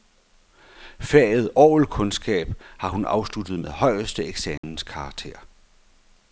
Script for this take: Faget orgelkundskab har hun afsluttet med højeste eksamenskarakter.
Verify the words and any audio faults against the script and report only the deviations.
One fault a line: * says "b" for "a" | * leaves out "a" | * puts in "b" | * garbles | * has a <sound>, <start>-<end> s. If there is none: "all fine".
* has a dropout, 4.6-4.6 s